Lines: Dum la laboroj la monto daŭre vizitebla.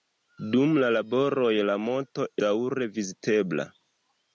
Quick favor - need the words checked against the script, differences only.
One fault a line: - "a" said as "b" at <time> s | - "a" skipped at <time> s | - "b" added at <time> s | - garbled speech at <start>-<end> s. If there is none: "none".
none